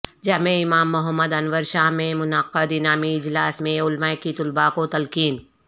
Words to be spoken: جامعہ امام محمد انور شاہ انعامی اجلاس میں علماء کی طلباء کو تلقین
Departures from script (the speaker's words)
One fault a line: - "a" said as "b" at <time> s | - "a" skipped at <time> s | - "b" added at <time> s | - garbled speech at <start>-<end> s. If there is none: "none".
- "میں منعقد" added at 1.9 s